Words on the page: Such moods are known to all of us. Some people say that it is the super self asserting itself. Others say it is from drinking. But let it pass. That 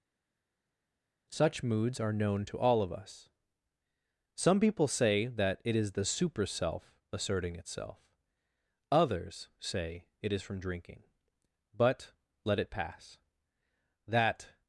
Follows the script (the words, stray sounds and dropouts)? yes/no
yes